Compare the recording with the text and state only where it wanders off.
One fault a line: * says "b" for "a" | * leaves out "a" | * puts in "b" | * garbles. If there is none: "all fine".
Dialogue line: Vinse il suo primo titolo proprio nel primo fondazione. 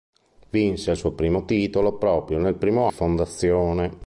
all fine